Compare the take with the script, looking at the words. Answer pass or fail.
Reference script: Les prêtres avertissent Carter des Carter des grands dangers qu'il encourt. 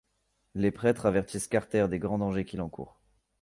fail